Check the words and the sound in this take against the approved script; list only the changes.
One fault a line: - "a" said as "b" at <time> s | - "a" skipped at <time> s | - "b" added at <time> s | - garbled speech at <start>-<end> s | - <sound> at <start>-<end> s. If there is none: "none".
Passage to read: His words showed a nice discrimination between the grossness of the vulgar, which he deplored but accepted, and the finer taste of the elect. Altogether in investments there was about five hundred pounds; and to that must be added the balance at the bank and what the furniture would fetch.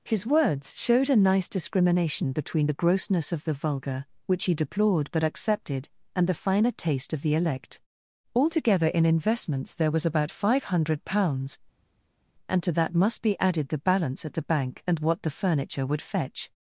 none